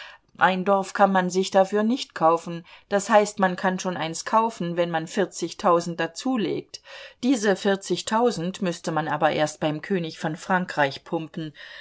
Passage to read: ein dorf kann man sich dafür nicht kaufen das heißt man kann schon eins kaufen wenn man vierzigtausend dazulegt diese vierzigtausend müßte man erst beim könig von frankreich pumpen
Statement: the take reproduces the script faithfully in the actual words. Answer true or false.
false